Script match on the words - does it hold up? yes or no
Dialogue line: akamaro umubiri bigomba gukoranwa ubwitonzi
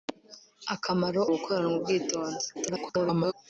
no